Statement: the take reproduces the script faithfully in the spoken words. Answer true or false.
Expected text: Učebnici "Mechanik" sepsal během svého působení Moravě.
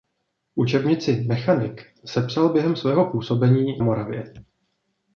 true